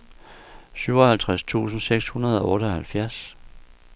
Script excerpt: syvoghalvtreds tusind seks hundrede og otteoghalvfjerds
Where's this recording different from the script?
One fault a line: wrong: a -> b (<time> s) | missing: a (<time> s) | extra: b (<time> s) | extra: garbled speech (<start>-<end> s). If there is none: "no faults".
no faults